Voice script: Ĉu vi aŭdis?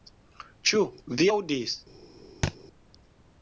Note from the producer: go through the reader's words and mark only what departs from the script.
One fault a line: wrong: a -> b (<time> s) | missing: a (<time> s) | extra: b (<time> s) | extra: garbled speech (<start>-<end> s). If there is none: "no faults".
no faults